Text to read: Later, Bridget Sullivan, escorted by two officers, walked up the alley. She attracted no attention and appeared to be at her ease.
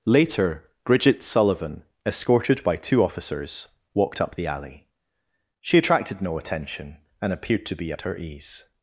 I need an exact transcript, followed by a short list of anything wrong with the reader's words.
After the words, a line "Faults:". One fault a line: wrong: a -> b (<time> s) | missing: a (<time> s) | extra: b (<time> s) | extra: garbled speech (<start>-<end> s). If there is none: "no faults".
Later, Bridget Sullivan, escorted by two officers, walked up the alley. She attracted no attention and appeared to be at her ease.
Faults:
no faults